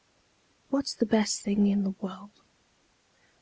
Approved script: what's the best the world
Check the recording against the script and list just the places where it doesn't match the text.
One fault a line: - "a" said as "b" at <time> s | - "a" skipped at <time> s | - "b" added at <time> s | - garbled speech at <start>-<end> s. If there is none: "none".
- "thing in" added at 1.4 s